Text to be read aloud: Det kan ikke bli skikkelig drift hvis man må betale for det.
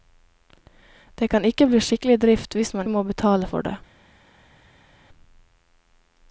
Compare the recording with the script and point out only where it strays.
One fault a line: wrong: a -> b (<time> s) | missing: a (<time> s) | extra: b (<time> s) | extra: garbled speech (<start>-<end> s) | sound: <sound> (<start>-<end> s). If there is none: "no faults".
no faults